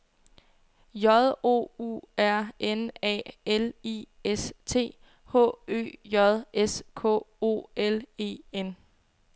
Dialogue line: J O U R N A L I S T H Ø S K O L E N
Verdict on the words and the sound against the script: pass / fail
fail